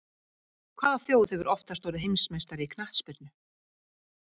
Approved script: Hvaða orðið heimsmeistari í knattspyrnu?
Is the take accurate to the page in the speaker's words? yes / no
no